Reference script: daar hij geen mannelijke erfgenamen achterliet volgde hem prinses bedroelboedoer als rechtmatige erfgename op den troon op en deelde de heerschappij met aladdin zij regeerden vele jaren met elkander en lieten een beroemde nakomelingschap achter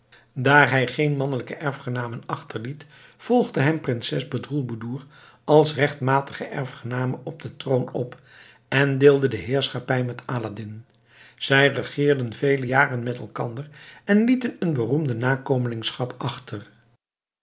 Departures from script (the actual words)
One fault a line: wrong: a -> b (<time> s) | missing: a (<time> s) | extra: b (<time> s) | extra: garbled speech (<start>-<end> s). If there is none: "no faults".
no faults